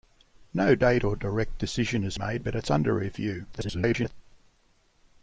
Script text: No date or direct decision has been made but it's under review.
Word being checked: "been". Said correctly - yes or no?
no